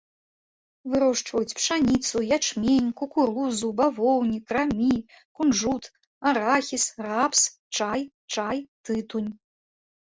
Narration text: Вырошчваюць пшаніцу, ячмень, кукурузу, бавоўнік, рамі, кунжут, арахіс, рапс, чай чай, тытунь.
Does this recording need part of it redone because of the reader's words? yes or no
no